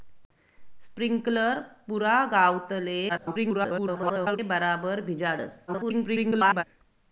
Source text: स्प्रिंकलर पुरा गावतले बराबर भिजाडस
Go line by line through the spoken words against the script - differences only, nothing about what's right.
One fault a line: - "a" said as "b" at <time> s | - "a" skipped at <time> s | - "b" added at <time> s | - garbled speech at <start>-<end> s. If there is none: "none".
- garbled speech at 3.1-4.4 s
- garbled speech at 5.7-6.6 s